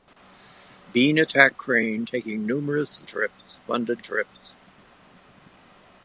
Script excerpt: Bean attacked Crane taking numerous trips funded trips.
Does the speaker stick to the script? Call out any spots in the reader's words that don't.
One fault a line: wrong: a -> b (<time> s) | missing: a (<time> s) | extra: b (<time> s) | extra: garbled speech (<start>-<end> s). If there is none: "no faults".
no faults